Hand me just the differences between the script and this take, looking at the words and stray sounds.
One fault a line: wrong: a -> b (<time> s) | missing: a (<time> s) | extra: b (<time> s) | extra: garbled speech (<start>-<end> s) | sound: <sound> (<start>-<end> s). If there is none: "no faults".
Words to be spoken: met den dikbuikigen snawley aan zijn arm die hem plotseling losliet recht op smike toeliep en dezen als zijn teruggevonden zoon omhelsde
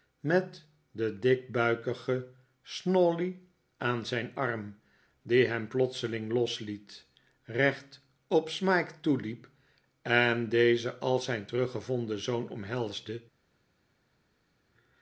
no faults